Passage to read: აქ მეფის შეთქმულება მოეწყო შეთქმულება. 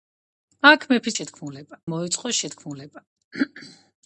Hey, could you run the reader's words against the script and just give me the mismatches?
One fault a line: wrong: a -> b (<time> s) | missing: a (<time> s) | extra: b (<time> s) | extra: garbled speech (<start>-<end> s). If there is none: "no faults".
no faults